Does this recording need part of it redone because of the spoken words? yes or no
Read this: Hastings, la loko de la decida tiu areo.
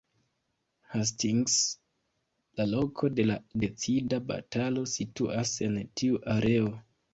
yes